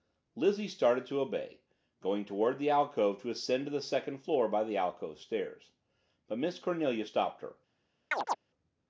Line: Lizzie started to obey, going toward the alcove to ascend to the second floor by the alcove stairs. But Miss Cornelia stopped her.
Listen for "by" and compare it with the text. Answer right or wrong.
right